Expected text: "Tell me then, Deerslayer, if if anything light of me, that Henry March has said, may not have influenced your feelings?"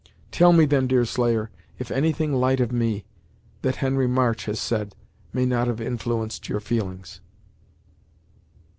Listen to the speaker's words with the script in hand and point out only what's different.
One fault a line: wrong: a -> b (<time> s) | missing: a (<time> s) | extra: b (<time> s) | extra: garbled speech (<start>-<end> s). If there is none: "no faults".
missing: if (1.9 s)